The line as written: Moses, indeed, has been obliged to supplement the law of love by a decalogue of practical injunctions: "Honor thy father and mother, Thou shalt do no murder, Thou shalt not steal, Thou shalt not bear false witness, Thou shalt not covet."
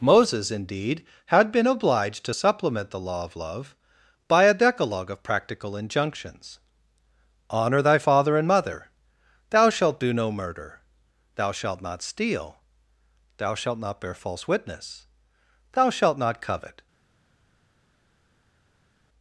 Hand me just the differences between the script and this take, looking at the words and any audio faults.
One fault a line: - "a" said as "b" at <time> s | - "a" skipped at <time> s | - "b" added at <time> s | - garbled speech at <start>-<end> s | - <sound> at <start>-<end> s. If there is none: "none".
- "has" said as "had" at 1.3 s